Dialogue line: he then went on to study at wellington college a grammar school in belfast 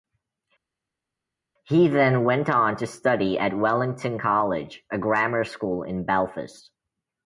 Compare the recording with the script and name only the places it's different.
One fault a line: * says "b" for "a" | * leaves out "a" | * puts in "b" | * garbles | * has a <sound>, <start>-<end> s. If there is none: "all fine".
all fine